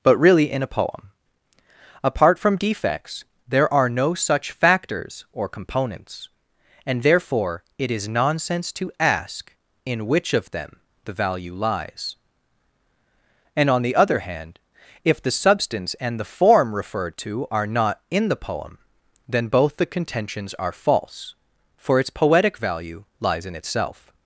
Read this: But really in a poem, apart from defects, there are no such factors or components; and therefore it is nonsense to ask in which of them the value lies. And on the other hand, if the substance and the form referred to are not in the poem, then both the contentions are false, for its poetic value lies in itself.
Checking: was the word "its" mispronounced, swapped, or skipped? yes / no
no